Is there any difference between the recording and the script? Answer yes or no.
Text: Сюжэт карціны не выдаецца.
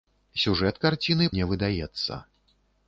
no